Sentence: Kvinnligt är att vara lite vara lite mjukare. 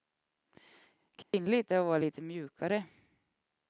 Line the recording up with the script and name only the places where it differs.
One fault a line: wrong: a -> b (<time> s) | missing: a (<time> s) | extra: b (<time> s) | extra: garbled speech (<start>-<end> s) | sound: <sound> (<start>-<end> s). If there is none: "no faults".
sound: dropout (1.2-1.3 s)
missing: vara lite (2.2 s)